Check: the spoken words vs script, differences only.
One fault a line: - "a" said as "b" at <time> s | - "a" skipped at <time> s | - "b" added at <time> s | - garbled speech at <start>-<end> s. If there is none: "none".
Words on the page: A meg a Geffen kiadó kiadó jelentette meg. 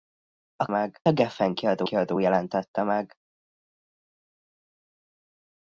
none